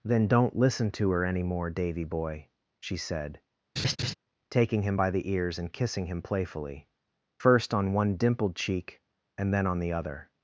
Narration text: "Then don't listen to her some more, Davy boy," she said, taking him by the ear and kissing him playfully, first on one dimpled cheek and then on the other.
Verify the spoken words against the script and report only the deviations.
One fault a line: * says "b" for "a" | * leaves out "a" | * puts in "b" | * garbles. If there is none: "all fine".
* says "any" for "some"
* says "ears" for "ear"